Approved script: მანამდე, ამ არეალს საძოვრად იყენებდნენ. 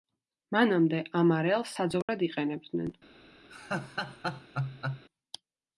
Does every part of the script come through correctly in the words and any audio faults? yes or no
no